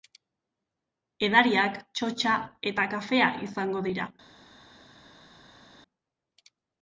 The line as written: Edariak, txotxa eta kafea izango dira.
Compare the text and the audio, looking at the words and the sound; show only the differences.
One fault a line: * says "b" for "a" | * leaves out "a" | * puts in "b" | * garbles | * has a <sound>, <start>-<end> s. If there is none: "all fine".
all fine